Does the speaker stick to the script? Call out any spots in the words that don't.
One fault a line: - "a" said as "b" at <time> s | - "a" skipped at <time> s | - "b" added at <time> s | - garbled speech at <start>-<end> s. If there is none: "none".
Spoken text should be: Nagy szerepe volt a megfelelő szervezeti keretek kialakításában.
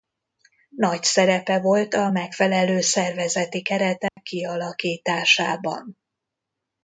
none